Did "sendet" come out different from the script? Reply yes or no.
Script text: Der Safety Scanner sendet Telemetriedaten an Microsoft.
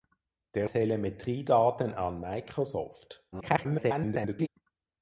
yes